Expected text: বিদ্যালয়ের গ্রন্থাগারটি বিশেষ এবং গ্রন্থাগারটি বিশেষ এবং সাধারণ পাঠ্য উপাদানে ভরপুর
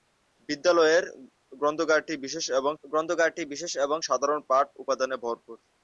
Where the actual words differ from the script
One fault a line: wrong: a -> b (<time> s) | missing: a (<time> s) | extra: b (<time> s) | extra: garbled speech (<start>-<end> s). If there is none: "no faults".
no faults